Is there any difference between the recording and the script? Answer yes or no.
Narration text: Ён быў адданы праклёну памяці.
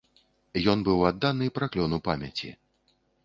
no